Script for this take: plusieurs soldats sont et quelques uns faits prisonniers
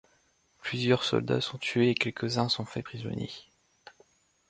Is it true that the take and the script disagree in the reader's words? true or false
true